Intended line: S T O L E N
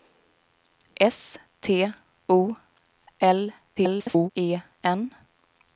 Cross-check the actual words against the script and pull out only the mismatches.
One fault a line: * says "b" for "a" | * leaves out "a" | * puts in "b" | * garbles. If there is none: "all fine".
* garbles